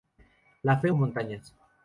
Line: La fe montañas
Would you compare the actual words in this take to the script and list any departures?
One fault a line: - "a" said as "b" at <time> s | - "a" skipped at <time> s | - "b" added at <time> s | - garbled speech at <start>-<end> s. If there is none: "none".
none